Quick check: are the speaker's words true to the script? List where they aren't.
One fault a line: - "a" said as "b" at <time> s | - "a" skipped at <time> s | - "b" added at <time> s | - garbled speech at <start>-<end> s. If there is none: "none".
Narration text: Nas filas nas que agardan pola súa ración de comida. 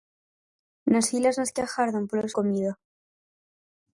- "súa ración de" skipped at 2.3 s